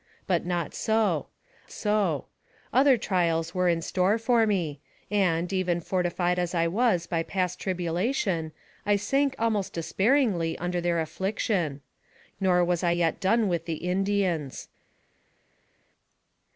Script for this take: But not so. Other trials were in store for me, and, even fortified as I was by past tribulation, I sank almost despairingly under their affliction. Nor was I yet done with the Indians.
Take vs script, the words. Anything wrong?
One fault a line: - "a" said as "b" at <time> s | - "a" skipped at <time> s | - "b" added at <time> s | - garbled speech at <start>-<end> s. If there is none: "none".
- "so" added at 1.7 s